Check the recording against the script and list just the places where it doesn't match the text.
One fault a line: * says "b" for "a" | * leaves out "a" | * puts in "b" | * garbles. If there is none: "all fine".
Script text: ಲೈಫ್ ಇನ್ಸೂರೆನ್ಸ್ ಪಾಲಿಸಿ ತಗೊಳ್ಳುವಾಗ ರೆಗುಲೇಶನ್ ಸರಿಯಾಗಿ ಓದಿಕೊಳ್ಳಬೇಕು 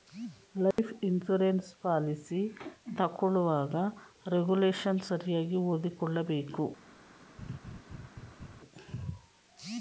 all fine